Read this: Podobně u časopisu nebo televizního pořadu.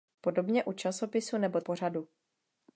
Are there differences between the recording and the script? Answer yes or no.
yes